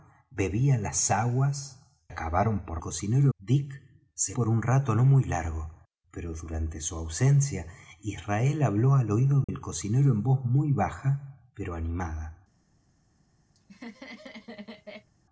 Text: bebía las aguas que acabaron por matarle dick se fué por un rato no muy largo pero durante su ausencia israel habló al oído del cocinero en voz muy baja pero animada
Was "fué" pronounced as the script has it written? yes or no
no